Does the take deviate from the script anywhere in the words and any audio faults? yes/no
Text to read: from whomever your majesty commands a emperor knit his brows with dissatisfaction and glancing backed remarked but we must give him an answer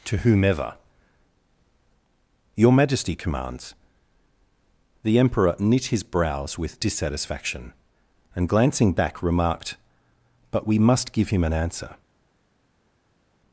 yes